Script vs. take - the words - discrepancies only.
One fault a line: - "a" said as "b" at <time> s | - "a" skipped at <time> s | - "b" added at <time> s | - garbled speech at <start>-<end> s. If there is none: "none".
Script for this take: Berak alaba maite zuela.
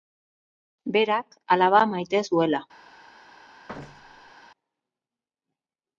none